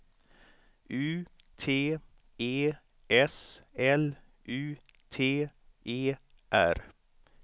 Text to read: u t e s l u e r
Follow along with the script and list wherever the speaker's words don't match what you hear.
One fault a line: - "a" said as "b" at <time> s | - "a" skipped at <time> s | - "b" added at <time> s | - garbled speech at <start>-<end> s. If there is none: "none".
- "t" added at 5.1 s